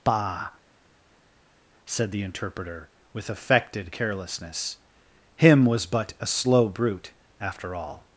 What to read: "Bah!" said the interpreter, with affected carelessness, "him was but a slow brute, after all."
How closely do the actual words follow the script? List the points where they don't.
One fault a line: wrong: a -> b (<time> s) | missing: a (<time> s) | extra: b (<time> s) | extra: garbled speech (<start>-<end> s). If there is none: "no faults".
no faults